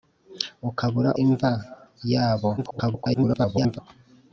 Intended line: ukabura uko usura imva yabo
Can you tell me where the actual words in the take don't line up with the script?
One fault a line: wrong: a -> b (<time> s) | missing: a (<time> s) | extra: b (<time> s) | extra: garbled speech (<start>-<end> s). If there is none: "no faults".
missing: uko usura (1.1 s)
extra: garbled speech (2.6-3.8 s)